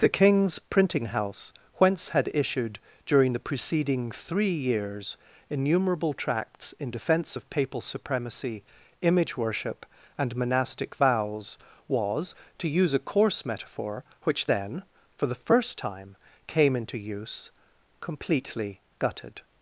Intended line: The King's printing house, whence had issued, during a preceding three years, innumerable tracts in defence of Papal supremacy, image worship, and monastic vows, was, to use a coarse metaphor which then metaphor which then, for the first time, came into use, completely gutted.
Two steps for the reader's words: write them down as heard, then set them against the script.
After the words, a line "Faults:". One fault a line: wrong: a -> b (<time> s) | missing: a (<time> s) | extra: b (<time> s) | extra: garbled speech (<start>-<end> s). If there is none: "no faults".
The King's printing house, whence had issued, during the preceding three years, innumerable tracts in defence of Papal supremacy, image worship, and monastic vows, was, to use a coarse metaphor which then, for the first time, came into use, completely gutted.
Faults:
wrong: a -> the (3.3 s)
missing: metaphor which then (14.8 s)